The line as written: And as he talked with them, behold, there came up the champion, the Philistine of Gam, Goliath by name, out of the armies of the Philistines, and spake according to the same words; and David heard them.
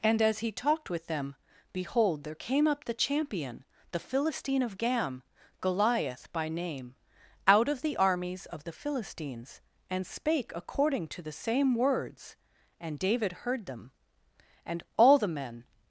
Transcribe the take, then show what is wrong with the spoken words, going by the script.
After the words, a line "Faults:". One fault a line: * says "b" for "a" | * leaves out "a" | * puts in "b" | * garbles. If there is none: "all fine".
And as he talked with them, behold, there came up the champion, the Philistine of Gam, Goliath by name, out of the armies of the Philistines, and spake according to the same words; and David heard them. And all the men
Faults:
* puts in "And all the men"